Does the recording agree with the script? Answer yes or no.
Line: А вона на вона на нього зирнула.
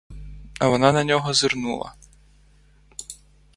no